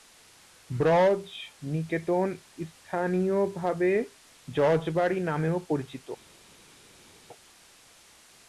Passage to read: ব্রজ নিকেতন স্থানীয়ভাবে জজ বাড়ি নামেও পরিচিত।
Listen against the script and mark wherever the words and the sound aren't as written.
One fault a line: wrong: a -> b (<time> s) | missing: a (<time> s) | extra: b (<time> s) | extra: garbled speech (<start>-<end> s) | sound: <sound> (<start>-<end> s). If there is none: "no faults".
no faults